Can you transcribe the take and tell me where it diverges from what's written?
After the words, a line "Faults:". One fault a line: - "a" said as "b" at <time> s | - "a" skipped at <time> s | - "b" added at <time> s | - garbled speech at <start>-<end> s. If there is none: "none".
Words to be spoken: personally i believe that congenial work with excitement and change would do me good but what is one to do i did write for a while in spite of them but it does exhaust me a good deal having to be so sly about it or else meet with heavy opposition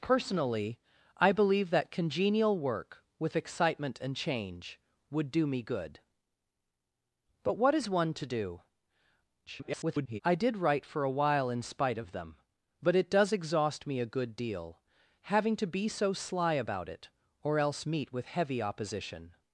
personally i believe that congenial work with excitement and change would do me good but what is one to do [garbled] i did write for a while in spite of them but it does exhaust me a good deal having to be so sly about it or else meet with heavy opposition
Faults:
- garbled speech at 9.5-10.2 s